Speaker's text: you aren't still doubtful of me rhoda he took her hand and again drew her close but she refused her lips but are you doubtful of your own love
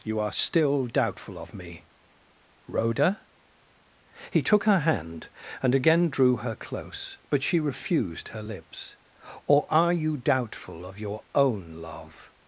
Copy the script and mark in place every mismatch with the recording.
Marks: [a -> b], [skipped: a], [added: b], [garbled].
you [aren't -> are] still doubtful of me rhoda he took her hand and again drew her close but she refused her lips [but -> or] are you doubtful of your own love